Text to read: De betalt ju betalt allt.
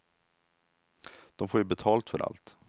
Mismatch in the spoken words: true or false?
true